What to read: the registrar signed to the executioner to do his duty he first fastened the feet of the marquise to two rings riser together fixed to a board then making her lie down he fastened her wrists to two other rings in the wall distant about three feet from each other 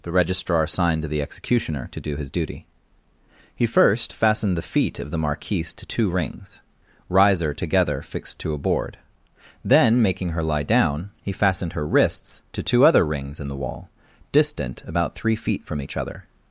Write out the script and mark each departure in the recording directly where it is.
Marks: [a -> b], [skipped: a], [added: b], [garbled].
the registrar signed to the executioner to do his duty he first fastened the feet of the marquise to two rings riser together fixed to a board then making her lie down he fastened her wrists to two other rings in the wall distant about three feet from each other